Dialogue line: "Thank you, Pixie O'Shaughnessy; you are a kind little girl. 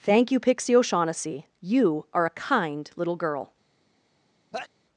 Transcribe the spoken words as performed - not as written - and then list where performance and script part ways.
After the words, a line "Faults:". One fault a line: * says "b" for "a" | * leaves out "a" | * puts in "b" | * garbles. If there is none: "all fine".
"Thank you, Pixie O'Shaughnessy; you are a kind little girl.
Faults:
all fine